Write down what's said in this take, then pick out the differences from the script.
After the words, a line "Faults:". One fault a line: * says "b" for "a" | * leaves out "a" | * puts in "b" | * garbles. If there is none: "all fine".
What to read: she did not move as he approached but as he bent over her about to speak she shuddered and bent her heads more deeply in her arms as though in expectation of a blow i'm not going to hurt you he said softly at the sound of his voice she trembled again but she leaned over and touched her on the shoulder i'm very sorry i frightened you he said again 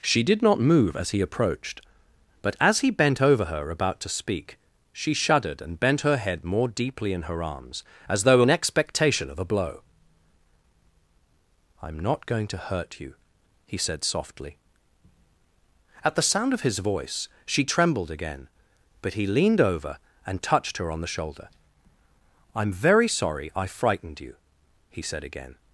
she did not move as he approached but as he bent over her about to speak she shuddered and bent her head more deeply in her arms as though in expectation of a blow i'm not going to hurt you he said softly at the sound of his voice she trembled again but he leaned over and touched her on the shoulder i'm very sorry i frightened you he said again
Faults:
* says "head" for "heads"
* says "he" for "she"